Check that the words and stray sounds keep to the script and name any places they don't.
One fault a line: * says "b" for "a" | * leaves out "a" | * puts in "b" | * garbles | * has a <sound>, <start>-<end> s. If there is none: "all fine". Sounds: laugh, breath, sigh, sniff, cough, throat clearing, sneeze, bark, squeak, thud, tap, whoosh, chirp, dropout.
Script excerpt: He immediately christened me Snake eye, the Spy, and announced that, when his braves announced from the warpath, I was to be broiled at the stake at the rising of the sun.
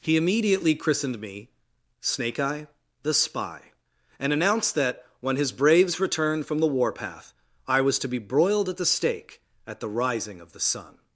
* says "returned" for "announced"